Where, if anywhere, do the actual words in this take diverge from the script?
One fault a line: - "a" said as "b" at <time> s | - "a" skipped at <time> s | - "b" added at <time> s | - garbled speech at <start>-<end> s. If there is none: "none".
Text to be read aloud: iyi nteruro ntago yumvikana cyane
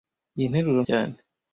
- "ntago yumvikana" skipped at 0.8 s